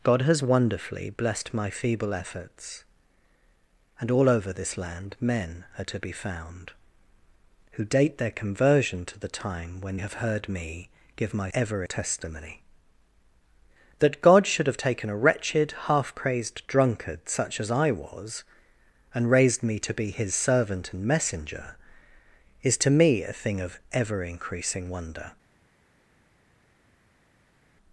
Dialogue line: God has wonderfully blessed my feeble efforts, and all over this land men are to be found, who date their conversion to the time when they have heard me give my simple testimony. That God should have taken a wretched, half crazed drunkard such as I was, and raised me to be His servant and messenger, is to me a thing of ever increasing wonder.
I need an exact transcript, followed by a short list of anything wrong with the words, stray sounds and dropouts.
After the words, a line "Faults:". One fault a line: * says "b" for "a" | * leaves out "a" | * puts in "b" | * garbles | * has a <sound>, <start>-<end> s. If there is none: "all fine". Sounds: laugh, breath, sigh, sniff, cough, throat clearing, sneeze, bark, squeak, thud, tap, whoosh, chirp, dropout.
God has wonderfully blessed my feeble efforts, and all over this land men are to be found, who date their conversion to the time when have heard me give my ever testimony. That God should have taken a wretched, half crazed drunkard such as I was, and raised me to be His servant and messenger, is to me a thing of ever increasing wonder.
Faults:
* leaves out "they"
* says "ever" for "simple"